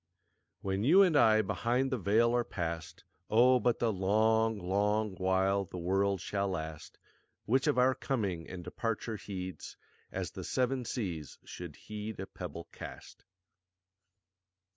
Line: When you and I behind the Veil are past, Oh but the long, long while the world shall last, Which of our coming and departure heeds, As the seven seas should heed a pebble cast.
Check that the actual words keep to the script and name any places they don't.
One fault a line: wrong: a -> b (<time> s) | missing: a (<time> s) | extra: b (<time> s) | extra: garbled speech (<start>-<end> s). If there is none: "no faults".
no faults